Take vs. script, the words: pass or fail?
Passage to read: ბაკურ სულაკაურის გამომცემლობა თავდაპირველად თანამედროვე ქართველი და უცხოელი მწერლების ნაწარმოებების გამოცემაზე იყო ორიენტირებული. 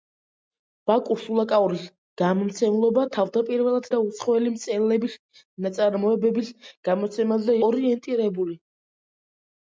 fail